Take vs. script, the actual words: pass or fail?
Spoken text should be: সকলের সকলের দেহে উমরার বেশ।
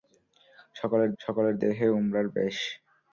pass